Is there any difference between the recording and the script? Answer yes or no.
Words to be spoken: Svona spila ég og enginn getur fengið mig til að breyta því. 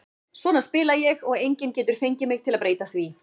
no